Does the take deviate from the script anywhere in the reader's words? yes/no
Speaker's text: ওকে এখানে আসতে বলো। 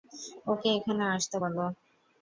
no